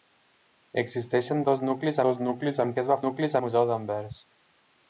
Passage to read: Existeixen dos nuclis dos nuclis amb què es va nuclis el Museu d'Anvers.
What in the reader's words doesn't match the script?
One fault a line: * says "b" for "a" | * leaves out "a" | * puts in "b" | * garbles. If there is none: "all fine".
all fine